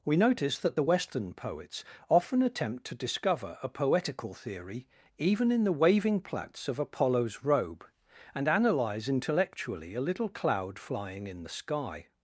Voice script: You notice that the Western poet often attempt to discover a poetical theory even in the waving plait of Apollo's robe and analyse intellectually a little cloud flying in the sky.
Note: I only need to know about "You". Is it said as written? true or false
false